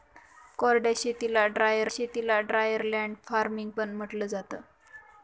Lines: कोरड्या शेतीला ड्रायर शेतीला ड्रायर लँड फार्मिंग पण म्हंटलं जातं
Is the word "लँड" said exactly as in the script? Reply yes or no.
yes